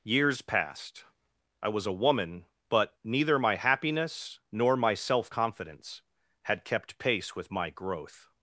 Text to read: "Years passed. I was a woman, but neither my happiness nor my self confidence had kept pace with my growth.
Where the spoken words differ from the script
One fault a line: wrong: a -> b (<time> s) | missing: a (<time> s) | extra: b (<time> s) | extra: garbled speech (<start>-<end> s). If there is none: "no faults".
no faults